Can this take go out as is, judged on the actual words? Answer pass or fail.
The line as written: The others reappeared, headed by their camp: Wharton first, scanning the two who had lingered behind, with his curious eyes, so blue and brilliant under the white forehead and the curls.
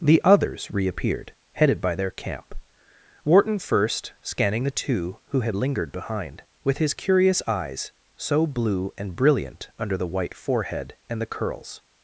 pass